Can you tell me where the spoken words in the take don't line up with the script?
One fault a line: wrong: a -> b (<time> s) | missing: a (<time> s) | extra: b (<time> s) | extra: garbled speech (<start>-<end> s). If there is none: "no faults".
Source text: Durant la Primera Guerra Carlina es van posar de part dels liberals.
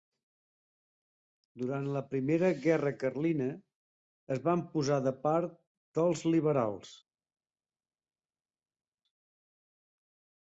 no faults